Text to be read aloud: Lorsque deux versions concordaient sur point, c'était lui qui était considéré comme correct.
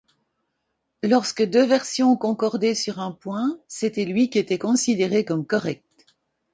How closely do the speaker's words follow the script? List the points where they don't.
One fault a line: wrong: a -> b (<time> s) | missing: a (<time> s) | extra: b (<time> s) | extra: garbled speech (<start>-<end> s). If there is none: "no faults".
extra: un (3.0 s)